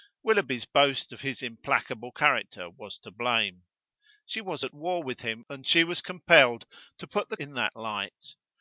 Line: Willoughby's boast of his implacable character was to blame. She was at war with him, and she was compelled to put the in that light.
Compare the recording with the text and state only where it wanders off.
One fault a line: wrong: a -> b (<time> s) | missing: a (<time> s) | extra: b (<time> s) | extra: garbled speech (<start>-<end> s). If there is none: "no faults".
no faults